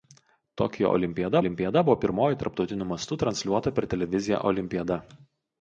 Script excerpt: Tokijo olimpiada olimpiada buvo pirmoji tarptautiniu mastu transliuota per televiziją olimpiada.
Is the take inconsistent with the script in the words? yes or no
no